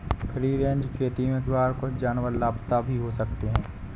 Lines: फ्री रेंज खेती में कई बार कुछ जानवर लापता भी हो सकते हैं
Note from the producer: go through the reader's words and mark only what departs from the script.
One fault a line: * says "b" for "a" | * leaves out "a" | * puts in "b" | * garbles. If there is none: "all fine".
* leaves out "कई"